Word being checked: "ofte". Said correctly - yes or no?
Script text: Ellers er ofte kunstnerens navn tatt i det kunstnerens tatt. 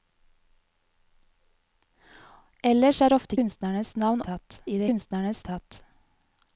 yes